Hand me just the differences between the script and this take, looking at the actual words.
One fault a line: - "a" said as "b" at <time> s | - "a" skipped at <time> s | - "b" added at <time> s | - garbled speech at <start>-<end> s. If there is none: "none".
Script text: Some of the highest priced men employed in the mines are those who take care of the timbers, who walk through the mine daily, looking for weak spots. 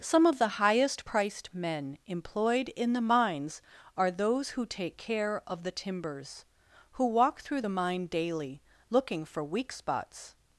none